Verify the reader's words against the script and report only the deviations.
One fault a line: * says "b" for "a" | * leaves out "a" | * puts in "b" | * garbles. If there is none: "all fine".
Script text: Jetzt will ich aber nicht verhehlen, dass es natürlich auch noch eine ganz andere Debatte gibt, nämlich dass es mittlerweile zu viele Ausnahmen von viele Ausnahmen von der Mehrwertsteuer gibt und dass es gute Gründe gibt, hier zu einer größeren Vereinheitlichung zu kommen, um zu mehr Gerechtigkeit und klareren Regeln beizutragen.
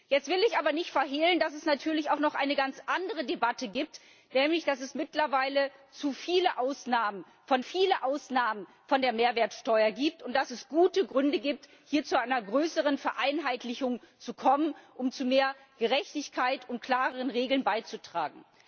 all fine